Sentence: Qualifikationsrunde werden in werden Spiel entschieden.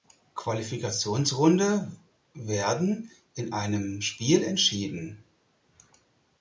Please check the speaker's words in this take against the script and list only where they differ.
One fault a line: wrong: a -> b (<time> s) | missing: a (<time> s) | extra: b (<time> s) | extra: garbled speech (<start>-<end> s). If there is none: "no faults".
wrong: werden -> einem (3.5 s)